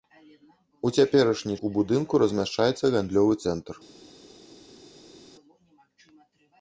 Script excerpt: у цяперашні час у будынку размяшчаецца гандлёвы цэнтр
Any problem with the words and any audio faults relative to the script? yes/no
yes